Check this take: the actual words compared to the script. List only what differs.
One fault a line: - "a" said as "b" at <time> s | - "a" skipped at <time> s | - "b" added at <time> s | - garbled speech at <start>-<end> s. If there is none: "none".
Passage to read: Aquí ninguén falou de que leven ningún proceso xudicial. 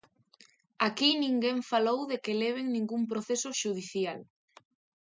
none